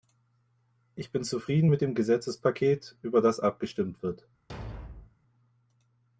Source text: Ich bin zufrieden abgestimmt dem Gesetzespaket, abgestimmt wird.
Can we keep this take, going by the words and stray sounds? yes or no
no